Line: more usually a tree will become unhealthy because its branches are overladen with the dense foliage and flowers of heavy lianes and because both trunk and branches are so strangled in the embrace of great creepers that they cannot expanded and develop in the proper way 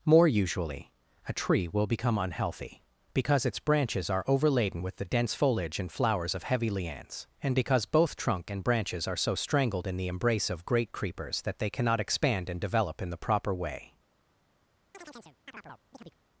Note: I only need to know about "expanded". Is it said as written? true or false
false